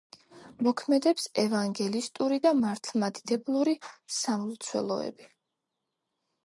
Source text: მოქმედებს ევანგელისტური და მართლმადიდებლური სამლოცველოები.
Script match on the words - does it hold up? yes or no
yes